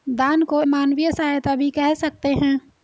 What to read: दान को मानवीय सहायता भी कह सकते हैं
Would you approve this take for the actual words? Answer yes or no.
yes